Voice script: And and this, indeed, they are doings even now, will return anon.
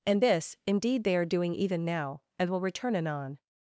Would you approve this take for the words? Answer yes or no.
no